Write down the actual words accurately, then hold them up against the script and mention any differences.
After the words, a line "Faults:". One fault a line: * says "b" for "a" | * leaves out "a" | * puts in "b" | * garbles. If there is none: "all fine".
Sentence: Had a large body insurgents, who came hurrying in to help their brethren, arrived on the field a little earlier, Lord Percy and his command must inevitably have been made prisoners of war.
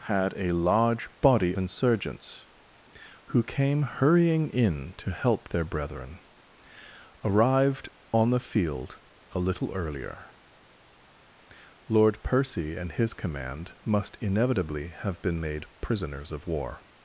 Had a large body insurgents, who came hurrying in to help their brethren, arrived on the field a little earlier, Lord Percy and his command must inevitably have been made prisoners of war.
Faults:
all fine